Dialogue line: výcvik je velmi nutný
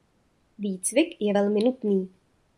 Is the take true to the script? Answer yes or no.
yes